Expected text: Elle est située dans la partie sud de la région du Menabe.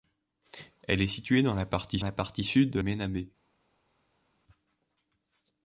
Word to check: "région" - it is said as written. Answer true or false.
false